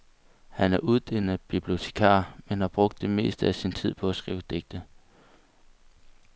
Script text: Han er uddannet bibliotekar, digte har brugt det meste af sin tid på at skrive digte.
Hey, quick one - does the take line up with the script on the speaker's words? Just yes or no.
no